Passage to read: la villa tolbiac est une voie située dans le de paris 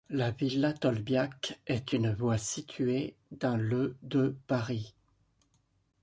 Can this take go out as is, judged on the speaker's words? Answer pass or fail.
pass